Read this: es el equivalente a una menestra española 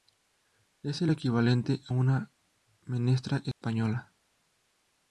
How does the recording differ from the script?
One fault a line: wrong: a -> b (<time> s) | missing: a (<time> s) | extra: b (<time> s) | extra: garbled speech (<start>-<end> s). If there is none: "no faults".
no faults